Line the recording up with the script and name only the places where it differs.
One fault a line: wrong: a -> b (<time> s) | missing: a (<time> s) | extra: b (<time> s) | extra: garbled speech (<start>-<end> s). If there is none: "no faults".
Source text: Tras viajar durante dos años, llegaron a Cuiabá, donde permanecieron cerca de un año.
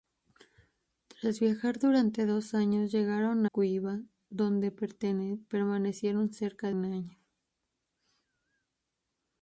missing: a (3.5 s)
missing: de (6.7 s)